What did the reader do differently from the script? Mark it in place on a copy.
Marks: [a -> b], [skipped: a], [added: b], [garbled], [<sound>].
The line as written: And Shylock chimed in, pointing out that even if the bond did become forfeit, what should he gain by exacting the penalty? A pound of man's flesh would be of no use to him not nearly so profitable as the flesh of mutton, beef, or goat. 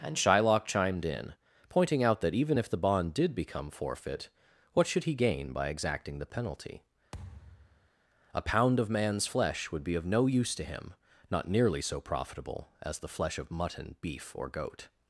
And Shylock chimed in, pointing out that even if the bond did become forfeit, what should he gain by exacting the penalty? [thud] A pound of man's flesh would be of no use to him not nearly so profitable as the flesh of mutton, beef, or goat.